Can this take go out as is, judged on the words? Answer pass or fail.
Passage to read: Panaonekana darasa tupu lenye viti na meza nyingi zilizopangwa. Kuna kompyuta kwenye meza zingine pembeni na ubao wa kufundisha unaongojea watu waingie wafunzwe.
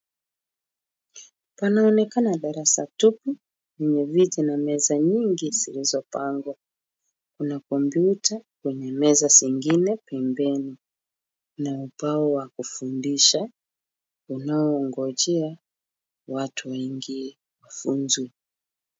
pass